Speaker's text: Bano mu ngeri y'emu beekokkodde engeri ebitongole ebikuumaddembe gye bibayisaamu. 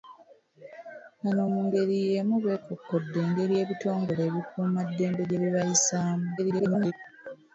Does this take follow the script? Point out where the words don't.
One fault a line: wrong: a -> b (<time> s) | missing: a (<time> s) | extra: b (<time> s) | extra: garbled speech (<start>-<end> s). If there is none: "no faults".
extra: garbled speech (6.4-6.9 s)